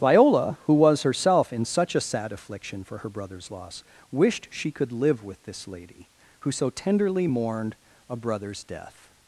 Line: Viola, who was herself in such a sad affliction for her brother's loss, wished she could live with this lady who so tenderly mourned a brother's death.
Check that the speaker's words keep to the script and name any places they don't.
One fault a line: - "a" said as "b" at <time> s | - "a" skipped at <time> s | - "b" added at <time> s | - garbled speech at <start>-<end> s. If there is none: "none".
none